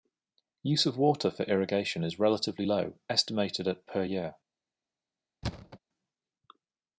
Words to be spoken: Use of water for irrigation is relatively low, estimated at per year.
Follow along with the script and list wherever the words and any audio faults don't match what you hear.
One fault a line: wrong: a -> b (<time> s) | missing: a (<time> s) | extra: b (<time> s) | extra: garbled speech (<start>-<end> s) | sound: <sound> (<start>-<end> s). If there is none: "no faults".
sound: thud (5.4-5.8 s)